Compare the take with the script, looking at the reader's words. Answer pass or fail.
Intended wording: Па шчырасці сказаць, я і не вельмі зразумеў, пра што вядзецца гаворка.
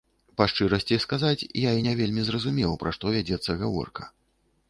pass